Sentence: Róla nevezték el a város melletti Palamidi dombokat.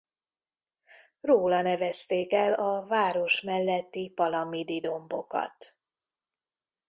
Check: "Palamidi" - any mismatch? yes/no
no